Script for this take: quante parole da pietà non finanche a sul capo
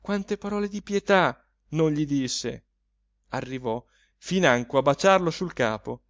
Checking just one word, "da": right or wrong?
wrong